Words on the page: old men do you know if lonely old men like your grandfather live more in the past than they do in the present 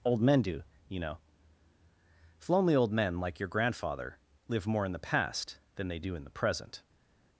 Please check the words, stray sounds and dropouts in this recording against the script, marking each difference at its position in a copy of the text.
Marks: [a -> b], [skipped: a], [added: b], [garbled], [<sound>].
old men do you know if lonely old men like your grandfather live more in the past than they do in the present